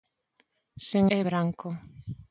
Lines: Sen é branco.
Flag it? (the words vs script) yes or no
no